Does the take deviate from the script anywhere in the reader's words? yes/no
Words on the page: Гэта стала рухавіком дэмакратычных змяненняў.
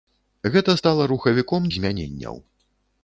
yes